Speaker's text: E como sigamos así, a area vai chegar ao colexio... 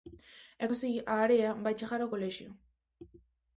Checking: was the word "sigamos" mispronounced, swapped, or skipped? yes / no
yes